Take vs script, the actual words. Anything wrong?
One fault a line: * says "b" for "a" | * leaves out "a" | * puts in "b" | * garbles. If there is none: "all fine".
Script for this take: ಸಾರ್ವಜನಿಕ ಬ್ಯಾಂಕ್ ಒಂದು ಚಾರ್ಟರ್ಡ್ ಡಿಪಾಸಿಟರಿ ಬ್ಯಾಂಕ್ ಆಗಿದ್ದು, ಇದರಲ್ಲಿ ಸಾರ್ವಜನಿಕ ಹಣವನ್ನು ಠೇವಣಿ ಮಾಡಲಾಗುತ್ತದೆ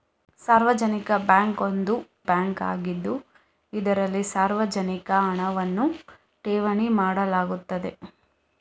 * leaves out "ಚಾರ್ಟರ್ಡ್ ಡಿಪಾಸಿಟರಿ"